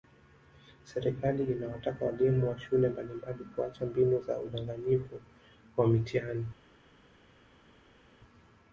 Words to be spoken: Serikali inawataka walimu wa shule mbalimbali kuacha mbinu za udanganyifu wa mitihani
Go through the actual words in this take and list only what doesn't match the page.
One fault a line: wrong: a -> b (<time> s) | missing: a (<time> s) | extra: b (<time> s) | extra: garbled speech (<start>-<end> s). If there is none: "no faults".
no faults